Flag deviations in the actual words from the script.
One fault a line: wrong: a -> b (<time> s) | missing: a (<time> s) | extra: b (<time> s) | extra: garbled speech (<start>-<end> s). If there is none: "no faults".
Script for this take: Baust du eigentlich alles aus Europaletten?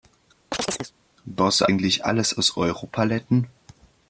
no faults